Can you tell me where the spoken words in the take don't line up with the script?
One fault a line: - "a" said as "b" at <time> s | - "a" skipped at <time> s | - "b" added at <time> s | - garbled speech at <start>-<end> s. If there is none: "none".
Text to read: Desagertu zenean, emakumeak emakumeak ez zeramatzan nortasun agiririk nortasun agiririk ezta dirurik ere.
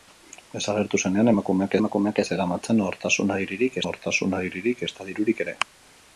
none